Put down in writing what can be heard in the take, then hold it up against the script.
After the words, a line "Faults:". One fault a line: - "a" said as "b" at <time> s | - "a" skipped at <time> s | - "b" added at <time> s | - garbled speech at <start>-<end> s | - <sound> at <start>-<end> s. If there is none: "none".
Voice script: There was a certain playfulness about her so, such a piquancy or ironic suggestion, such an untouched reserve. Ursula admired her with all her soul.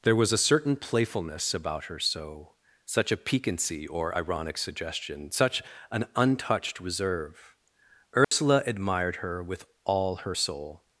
There was a certain playfulness about her so, such a piquancy or ironic suggestion, such an untouched reserve. Ursula admired her with all her soul.
Faults:
- dropout at 8.2-8.3 s